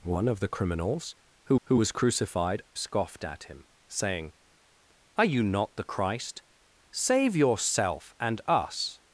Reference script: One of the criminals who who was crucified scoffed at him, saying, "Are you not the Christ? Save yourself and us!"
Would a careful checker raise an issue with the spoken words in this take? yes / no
no